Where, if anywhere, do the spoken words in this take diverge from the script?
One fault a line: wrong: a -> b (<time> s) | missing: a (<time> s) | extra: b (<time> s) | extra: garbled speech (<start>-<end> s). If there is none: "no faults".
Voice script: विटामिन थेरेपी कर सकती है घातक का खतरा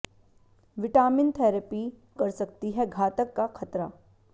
no faults